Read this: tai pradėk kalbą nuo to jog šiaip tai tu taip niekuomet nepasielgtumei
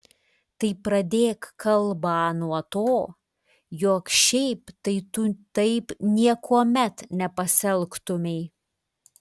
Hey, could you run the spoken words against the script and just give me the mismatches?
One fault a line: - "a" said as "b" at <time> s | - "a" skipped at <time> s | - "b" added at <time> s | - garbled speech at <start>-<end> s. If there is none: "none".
none